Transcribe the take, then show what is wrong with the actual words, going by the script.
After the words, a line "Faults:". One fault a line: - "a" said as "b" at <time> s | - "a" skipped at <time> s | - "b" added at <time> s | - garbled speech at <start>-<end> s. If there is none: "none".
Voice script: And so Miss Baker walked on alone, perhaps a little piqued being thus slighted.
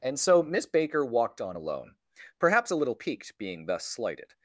And so Miss Baker walked on alone, perhaps a little piqued being thus slighted.
Faults:
none